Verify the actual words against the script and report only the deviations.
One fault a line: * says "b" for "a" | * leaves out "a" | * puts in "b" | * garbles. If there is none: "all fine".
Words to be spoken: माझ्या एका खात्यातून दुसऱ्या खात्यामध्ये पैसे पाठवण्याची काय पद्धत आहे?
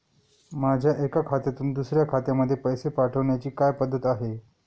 all fine